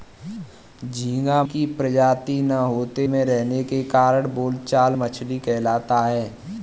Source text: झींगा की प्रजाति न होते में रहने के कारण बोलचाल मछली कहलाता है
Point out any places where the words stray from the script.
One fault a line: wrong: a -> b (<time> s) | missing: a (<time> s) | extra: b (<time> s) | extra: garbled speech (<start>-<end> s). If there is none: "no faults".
no faults